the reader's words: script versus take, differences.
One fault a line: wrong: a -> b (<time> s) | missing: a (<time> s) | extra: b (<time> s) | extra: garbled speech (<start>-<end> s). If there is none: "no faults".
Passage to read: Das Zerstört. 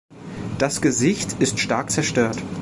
extra: Gesicht ist stark (0.8 s)